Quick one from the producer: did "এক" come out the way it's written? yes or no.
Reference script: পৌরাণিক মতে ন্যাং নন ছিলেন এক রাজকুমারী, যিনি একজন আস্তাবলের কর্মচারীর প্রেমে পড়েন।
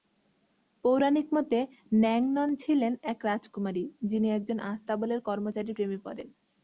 yes